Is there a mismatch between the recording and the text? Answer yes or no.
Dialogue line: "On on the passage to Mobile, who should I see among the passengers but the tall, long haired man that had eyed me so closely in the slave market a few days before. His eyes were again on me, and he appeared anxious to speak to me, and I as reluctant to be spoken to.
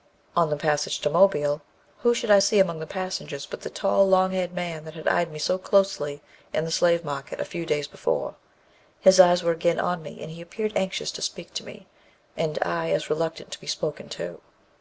yes